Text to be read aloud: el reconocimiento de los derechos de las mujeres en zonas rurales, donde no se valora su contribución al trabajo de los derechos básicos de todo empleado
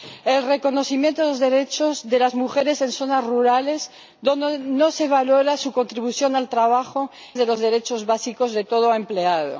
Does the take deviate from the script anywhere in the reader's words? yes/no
no